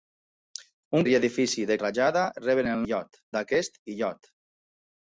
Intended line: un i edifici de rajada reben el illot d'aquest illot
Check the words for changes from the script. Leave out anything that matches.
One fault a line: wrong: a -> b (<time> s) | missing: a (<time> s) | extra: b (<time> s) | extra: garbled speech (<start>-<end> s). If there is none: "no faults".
no faults